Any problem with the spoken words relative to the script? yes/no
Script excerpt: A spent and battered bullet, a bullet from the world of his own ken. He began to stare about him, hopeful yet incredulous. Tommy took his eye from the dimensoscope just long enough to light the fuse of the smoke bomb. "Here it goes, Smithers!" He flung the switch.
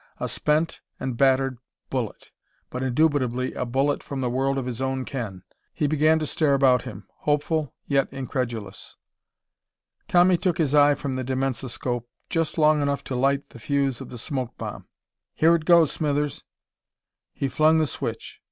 yes